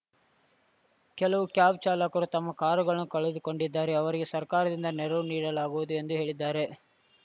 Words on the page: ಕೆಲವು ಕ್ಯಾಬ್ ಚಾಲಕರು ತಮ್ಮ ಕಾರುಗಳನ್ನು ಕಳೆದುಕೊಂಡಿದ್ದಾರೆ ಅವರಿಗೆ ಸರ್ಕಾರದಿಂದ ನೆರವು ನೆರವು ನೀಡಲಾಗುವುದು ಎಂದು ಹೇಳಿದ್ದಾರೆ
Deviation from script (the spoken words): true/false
true